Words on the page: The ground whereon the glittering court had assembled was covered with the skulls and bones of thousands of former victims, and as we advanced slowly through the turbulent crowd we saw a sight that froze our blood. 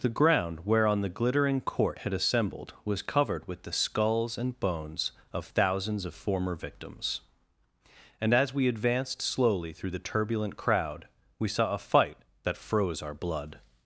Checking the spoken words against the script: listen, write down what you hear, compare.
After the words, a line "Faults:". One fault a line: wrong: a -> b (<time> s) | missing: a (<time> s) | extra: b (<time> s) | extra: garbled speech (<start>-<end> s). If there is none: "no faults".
The ground whereon the glittering court had assembled was covered with the skulls and bones of thousands of former victims, and as we advanced slowly through the turbulent crowd we saw a fight that froze our blood.
Faults:
wrong: sight -> fight (11.8 s)